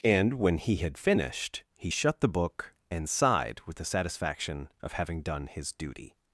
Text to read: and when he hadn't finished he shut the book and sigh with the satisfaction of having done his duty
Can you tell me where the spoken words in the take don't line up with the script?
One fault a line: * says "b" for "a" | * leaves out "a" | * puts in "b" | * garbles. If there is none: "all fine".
* says "had" for "hadn't"
* says "sighed" for "sigh"